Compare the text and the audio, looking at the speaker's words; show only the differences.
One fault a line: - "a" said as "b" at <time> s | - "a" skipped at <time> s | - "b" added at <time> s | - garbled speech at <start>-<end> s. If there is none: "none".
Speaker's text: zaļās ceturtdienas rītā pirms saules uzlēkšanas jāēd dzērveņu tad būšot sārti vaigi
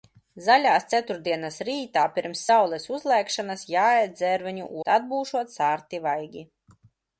none